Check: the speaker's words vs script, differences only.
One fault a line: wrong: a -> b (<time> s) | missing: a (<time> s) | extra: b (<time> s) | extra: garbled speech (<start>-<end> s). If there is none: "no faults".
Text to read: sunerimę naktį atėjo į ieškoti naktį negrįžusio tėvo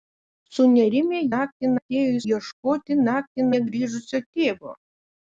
no faults